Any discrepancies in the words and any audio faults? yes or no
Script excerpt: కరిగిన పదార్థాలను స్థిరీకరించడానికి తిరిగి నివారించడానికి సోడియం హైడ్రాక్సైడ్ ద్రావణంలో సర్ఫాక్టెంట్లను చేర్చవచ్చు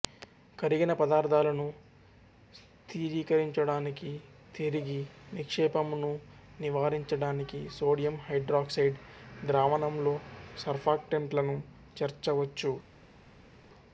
yes